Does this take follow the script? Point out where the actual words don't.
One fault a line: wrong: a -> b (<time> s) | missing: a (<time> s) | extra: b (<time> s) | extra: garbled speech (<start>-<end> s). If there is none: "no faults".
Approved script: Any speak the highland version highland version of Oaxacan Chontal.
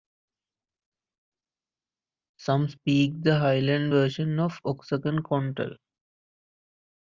wrong: Any -> Some (2.4 s)
missing: highland version (4.4 s)